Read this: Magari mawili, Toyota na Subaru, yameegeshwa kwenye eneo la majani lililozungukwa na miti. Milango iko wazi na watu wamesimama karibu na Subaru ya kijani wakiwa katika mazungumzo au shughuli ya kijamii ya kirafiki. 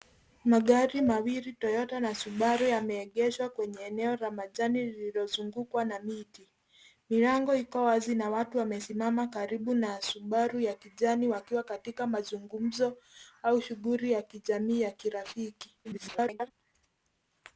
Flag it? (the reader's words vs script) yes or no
yes